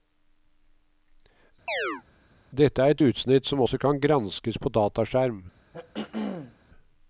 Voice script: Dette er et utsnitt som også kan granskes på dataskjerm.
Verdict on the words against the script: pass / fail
pass